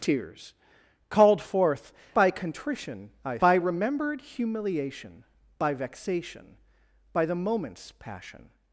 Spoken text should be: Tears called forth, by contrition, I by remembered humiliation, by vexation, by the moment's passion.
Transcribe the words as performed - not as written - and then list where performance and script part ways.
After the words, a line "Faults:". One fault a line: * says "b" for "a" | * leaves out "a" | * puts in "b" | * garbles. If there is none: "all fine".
Tears called forth, by contrition, I by remembered humiliation, by vexation, by the moment's passion.
Faults:
all fine